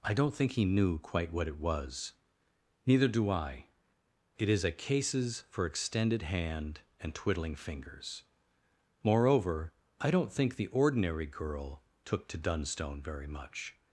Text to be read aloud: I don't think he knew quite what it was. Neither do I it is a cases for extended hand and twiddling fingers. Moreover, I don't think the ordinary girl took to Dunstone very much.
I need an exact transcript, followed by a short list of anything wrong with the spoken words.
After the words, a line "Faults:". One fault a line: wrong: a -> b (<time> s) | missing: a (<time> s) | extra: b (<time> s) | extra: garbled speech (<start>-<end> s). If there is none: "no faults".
I don't think he knew quite what it was. Neither do I it is a cases for extended hand and twiddling fingers. Moreover, I don't think the ordinary girl took to Dunstone very much.
Faults:
no faults